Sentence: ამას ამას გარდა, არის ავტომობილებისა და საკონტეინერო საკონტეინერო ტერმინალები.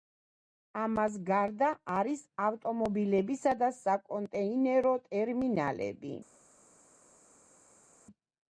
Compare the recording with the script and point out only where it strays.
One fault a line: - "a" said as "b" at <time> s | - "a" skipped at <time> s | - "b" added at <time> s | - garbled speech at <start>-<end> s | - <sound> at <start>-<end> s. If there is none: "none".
- "ამას" skipped at 1.2 s
- "საკონტეინერო" skipped at 4.9 s